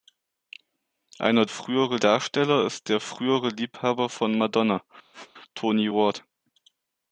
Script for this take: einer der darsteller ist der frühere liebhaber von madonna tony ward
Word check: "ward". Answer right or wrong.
right